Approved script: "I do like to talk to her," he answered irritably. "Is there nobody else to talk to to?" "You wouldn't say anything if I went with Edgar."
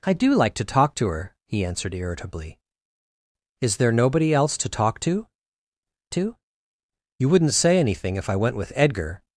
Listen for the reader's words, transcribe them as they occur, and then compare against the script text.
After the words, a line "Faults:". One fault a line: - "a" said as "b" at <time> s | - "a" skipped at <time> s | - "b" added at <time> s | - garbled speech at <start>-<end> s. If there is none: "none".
"I do like to talk to her," he answered irritably. "Is there nobody else to talk to to?" "You wouldn't say anything if I went with Edgar."
Faults:
none